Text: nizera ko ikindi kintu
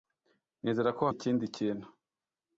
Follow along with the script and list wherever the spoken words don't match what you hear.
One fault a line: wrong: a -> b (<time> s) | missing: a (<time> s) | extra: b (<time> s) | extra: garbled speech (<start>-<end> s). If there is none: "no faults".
no faults